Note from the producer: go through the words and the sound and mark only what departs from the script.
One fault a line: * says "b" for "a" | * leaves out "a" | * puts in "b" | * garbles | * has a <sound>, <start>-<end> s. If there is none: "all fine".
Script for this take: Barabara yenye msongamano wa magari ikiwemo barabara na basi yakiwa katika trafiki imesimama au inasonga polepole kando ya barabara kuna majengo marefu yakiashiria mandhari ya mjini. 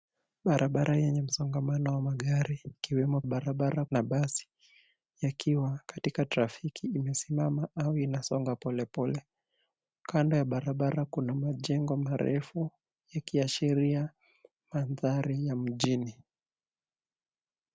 all fine